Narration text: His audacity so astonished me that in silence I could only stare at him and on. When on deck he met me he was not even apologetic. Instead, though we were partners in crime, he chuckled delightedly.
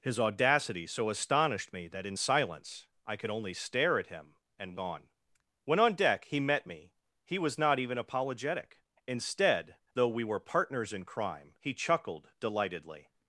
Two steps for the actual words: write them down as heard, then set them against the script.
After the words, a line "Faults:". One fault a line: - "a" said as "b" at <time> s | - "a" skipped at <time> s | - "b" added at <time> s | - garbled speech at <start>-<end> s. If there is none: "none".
His audacity so astonished me that in silence I could only stare at him and on. When on deck he met me he was not even apologetic. Instead, though we were partners in crime, he chuckled delightedly.
Faults:
none